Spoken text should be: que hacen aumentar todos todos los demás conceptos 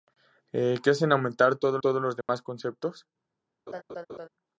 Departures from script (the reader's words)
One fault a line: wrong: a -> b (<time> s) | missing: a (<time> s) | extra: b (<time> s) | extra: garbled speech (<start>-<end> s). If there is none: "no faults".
no faults